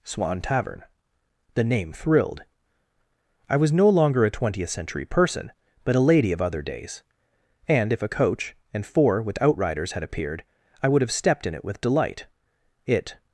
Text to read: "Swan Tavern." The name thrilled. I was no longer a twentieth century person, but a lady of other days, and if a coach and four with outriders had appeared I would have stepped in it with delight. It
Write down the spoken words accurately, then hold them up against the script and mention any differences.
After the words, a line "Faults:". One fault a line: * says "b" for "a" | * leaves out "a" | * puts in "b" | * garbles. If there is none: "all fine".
"Swan Tavern." The name thrilled. I was no longer a twentieth century person, but a lady of other days, and if a coach and four with outriders had appeared I would have stepped in it with delight. It
Faults:
all fine